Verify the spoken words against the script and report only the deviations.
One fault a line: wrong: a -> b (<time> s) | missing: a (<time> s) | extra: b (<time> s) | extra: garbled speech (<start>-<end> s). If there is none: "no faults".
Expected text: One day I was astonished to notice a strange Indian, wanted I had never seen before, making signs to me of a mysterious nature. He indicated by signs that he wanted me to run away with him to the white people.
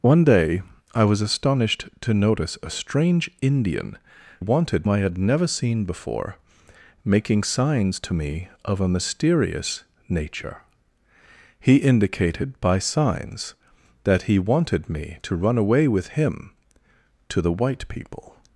no faults